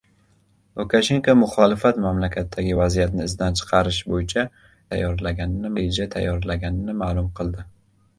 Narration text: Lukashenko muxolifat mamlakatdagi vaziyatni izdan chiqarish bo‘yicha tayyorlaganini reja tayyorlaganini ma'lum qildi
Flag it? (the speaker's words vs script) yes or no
no